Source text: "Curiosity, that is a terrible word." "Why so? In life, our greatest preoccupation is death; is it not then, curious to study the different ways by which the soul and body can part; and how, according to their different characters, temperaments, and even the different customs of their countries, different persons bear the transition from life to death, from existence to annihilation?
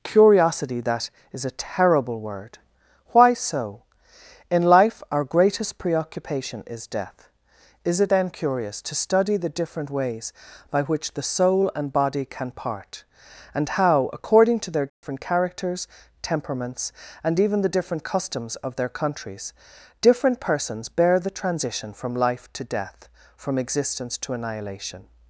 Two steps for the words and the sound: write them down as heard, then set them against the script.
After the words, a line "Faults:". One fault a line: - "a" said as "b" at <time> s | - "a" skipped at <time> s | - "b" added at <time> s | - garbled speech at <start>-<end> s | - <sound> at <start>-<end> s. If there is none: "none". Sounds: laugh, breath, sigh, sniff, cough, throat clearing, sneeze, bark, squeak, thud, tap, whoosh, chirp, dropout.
"Curiosity, that is a terrible word." "Why so? In life, our greatest preoccupation is death; is it then, curious to study the different ways by which the soul and body can part; and how, according to their different characters, temperaments, and even the different customs of their countries, different persons bear the transition from life to death, from existence to annihilation?
Faults:
- "not" skipped at 8.1 s
- dropout at 14.9-15.0 s